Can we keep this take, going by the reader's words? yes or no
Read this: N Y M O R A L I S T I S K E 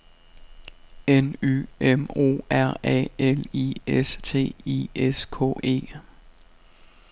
yes